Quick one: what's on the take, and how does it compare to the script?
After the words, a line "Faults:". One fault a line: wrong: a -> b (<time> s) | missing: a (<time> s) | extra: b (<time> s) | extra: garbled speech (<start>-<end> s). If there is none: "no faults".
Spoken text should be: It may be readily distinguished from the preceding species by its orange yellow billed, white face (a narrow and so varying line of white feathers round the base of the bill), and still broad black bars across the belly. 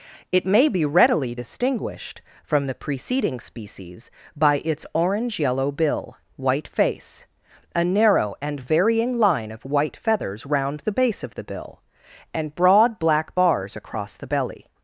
It may be readily distinguished from the preceding species by its orange yellow bill, white face (a narrow and varying line of white feathers round the base of the bill), and broad black bars across the belly.
Faults:
wrong: billed -> bill (5.7 s)
missing: so (8.6 s)
missing: still (12.5 s)